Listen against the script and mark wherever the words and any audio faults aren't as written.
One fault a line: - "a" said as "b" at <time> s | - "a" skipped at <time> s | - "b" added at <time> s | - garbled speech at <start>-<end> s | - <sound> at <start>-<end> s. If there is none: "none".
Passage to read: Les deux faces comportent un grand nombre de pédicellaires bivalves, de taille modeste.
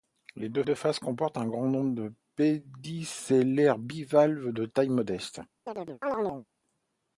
- "deux" added at 0.6 s
- chirp at 5.7-6.5 s